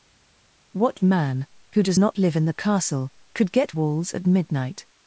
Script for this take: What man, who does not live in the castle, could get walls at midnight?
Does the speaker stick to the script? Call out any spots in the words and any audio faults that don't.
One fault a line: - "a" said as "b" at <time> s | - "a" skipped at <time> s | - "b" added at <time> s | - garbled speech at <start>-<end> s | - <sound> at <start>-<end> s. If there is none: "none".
none